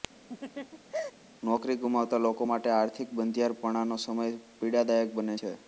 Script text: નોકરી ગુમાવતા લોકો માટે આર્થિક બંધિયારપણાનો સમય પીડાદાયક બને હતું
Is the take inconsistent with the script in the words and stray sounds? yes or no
yes